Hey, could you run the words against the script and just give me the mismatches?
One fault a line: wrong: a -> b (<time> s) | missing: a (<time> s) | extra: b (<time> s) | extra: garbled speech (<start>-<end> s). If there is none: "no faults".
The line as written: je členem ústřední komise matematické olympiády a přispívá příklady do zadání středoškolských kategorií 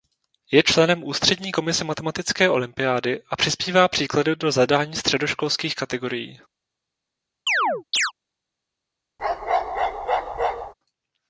no faults